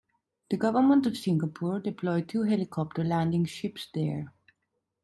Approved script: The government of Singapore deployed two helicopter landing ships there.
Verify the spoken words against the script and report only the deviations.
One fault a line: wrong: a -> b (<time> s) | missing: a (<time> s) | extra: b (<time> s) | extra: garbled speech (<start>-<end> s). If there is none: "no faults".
no faults